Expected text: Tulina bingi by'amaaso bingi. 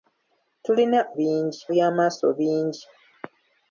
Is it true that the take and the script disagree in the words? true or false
false